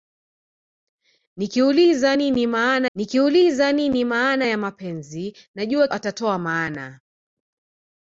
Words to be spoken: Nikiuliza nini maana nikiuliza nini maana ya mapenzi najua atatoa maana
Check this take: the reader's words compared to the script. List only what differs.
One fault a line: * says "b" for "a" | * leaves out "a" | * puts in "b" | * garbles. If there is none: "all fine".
all fine